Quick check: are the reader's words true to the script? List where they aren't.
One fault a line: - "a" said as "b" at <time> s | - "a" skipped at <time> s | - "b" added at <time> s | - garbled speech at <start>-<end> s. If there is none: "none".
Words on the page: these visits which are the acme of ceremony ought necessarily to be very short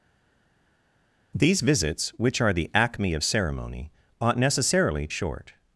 - "to be very" skipped at 5.1 s